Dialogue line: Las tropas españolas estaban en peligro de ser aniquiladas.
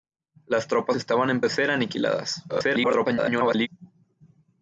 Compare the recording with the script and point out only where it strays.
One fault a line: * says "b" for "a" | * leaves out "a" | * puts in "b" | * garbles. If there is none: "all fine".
* leaves out "españolas"
* leaves out "peligro"
* garbles